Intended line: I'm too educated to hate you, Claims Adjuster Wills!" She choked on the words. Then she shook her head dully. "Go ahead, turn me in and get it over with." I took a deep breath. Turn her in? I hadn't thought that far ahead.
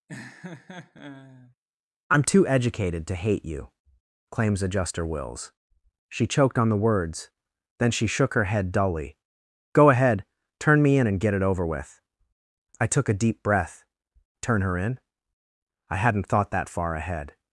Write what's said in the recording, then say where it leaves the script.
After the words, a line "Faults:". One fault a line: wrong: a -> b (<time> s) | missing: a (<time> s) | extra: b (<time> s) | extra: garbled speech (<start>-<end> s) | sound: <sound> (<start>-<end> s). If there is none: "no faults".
I'm too educated to hate you, Claims Adjuster Wills!" She choked on the words. Then she shook her head dully. "Go ahead, turn me in and get it over with." I took a deep breath. Turn her in? I hadn't thought that far ahead.
Faults:
sound: laugh (0.1-1.6 s)